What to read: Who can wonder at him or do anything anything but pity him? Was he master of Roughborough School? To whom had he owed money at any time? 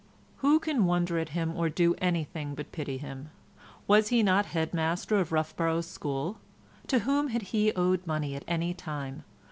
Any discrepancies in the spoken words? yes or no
yes